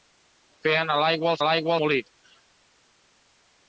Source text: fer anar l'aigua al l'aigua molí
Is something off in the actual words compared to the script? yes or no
no